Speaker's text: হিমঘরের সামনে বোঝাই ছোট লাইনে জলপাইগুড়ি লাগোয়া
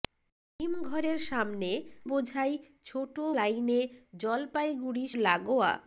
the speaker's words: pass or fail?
pass